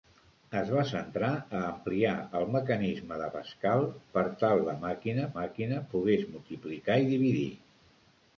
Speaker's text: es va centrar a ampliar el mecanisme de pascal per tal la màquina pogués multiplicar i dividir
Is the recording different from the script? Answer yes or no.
yes